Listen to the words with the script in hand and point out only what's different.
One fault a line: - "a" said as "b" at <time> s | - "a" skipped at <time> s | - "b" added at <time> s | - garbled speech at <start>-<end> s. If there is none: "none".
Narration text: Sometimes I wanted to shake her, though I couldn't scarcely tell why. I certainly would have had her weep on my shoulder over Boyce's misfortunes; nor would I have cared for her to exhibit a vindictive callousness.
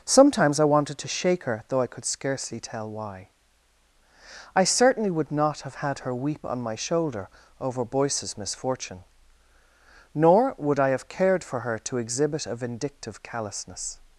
- "couldn't" said as "could" at 1.9 s
- "not" added at 5.3 s
- "misfortunes" said as "misfortune" at 8.4 s